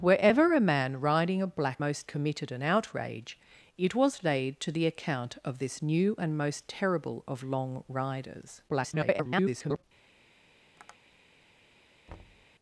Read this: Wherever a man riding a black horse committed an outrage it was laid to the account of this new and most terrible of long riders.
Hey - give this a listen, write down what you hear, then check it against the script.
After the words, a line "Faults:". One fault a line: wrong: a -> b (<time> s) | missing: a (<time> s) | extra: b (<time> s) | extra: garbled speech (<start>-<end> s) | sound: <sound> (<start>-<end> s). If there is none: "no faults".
Wherever a man riding a black most committed an outrage it was laid to the account of this new and most terrible of long riders. [garbled]
Faults:
wrong: horse -> most (1.8 s)
extra: garbled speech (8.7-9.8 s)
sound: tap (10.8-11.0 s)
sound: thud (12.1-12.5 s)